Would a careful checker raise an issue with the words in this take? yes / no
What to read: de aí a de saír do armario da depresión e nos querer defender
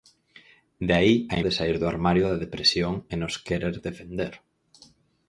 no